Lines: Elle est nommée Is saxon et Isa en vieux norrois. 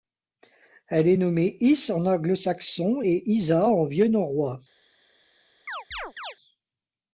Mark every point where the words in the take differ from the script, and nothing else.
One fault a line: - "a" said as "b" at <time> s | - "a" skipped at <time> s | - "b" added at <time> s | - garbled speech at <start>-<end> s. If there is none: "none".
- "en anglo" added at 1.9 s